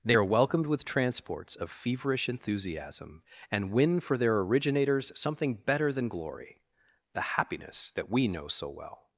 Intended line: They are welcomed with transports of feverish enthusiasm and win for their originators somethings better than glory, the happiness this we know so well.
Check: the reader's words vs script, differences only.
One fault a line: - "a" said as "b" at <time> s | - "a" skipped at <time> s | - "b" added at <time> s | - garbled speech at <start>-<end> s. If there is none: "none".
- "somethings" said as "something" at 5.2 s
- "this" said as "that" at 7.9 s